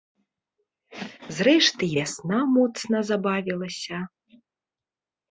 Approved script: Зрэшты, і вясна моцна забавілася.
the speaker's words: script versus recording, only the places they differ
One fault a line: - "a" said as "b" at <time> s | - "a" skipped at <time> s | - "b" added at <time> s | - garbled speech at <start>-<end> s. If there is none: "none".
none